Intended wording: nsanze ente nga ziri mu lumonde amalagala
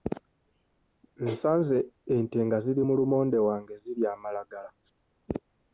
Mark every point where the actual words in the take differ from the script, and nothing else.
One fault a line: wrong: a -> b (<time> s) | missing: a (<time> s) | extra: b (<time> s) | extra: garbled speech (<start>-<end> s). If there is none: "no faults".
extra: wange zirya (3.5 s)